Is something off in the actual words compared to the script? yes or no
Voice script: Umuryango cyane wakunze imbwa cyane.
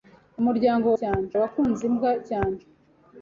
no